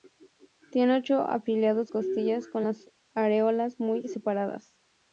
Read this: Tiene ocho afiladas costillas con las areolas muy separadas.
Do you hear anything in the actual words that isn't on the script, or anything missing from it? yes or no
no